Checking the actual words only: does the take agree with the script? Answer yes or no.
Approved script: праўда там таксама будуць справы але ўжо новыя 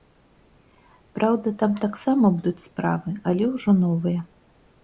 yes